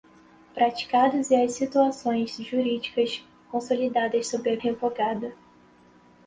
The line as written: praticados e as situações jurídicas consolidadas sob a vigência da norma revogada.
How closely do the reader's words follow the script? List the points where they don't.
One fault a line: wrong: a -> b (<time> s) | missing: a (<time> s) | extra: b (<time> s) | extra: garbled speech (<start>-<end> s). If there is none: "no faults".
missing: vigência da norma (4.6 s)